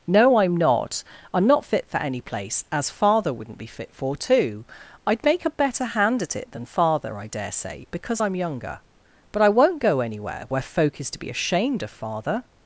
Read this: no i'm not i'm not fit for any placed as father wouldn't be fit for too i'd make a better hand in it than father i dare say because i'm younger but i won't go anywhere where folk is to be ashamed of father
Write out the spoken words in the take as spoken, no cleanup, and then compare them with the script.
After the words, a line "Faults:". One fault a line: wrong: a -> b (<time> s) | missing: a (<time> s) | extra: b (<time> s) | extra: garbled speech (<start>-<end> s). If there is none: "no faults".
no i'm not i'm not fit for any place as father wouldn't be fit for too i'd make a better hand at it than father i dare say because i'm younger but i won't go anywhere where folk is to be ashamed of father
Faults:
wrong: placed -> place (2.2 s)
wrong: in -> at (6.2 s)